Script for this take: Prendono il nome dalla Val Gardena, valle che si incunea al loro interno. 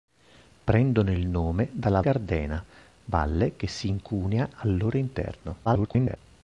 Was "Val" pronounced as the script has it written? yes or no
no